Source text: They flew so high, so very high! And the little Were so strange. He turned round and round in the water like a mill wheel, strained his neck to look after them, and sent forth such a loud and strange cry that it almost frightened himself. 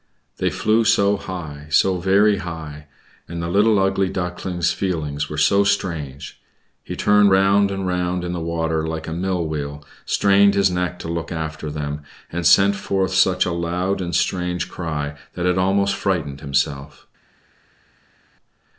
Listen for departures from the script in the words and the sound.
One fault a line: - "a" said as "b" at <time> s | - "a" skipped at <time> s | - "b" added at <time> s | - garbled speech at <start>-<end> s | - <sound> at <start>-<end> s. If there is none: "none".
- "Ugly Duckling's feelings" added at 3.8 s